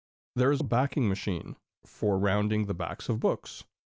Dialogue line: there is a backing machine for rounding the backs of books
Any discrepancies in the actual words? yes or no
no